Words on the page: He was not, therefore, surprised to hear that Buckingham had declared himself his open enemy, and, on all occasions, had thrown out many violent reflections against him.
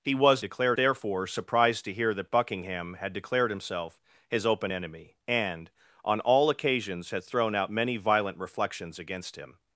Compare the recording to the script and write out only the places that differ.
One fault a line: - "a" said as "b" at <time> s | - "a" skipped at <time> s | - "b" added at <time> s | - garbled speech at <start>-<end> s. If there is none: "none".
- "not" said as "declared" at 0.4 s